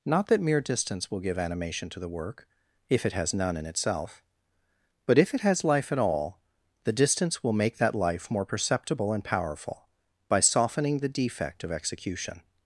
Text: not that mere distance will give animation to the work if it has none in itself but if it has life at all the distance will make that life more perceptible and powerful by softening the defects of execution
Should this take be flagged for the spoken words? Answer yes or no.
yes